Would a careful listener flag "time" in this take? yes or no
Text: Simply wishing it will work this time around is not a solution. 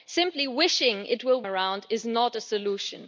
yes